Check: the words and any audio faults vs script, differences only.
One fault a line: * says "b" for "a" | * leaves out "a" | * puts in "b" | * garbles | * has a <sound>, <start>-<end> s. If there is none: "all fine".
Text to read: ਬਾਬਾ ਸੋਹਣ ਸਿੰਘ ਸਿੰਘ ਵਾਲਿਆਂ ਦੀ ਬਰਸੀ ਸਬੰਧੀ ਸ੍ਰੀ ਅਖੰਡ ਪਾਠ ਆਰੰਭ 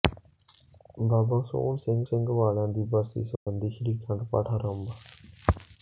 * has a dropout, 3.4-3.5 s